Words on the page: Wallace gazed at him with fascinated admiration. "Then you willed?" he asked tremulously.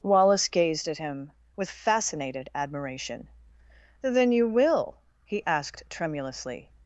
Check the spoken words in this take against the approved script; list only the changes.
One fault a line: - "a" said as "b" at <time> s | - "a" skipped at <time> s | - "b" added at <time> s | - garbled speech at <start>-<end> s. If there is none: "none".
- "willed" said as "will" at 4.5 s